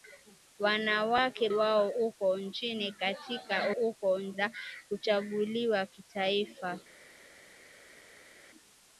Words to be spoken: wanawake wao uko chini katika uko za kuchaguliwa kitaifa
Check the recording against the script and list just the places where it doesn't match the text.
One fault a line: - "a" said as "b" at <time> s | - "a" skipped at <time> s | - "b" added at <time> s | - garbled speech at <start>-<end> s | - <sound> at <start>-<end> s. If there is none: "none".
none